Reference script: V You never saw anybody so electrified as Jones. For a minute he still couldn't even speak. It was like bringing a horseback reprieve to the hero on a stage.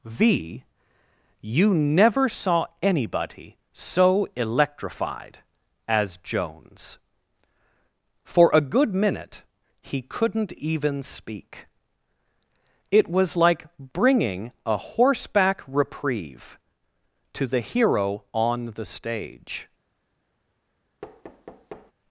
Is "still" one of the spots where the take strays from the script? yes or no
yes